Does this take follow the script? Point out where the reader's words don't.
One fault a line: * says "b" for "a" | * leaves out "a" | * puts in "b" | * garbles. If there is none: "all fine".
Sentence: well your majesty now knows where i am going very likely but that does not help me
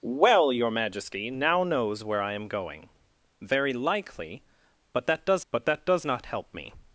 * puts in "but that does"